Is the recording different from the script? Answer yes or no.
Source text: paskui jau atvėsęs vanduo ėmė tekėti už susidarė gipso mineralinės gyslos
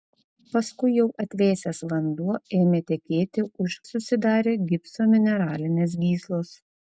no